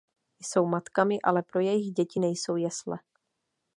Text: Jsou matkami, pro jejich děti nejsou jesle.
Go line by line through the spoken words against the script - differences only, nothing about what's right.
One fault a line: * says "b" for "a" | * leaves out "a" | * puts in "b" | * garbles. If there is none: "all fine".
* puts in "ale"